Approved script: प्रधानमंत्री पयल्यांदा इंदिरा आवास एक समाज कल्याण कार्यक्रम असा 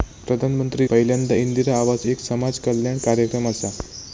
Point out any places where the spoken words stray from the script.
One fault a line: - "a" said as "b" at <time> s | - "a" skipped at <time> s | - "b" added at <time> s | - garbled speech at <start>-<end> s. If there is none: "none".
none